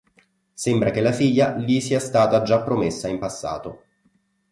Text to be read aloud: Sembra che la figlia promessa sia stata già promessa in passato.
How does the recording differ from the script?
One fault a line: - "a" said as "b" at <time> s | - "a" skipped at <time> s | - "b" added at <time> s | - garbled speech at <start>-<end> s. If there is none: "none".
- "promessa" said as "gli" at 1.6 s